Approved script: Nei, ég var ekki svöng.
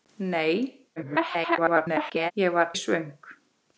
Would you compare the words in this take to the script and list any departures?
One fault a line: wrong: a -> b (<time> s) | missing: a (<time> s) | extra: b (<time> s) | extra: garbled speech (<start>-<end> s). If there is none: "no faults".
extra: garbled speech (1.0-2.3 s)
missing: ekki (2.7 s)